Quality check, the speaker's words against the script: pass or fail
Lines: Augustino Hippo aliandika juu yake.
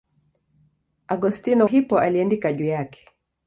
pass